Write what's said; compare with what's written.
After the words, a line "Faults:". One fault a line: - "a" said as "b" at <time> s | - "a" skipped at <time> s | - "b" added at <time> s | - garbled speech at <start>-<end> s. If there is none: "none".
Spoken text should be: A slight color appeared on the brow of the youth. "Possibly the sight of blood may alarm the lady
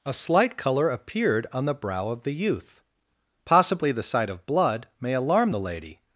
A slight color appeared on the brow of the youth. "Possibly the sight of blood may alarm the lady
Faults:
none